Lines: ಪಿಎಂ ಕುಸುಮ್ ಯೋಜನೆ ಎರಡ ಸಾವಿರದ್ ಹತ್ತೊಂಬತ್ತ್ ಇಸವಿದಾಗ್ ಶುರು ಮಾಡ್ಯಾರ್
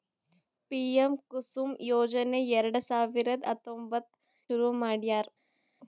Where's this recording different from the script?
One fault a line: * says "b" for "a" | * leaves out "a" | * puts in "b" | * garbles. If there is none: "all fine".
* leaves out "ಇಸವಿದಾಗ್"